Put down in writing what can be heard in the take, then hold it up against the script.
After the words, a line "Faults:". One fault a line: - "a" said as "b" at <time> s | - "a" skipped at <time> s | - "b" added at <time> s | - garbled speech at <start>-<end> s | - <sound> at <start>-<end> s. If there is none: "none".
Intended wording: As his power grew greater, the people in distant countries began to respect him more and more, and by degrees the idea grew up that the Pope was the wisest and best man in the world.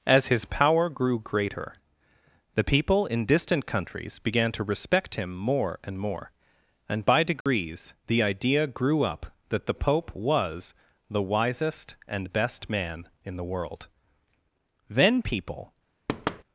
As his power grew greater, the people in distant countries began to respect him more and more, and by degrees the idea grew up that the Pope was the wisest and best man in the world. Then people
Faults:
- dropout at 7.4-7.5 s
- "Then people" added at 14.9 s
- thud at 16.1-16.4 s